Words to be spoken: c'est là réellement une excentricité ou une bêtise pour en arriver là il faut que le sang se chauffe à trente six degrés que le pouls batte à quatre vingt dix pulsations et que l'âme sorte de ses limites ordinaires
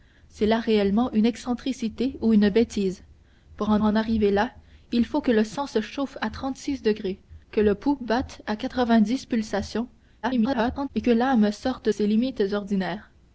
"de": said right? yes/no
no